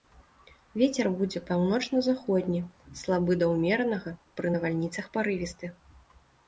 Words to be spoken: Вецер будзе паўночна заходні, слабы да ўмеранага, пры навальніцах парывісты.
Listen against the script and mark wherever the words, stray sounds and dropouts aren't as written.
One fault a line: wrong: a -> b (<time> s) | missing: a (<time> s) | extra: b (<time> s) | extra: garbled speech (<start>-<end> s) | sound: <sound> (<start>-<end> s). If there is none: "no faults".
no faults